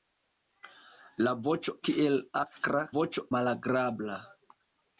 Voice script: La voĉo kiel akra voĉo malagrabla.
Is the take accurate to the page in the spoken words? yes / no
yes